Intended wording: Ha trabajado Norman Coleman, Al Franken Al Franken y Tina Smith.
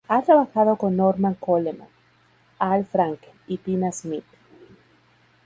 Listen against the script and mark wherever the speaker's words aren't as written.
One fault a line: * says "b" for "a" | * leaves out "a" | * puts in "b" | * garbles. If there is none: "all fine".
* puts in "con"
* leaves out "Al Franken"